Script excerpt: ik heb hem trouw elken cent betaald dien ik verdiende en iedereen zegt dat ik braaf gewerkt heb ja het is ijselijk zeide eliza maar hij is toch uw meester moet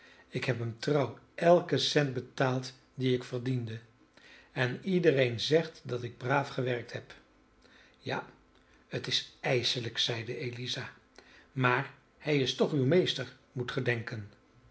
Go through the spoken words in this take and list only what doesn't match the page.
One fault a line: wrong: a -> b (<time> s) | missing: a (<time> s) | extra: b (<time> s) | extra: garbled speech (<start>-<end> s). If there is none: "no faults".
no faults